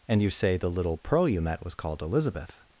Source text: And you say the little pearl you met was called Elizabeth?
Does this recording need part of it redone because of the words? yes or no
no